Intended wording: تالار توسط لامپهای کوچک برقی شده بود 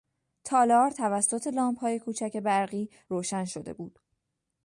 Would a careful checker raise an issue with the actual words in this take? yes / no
yes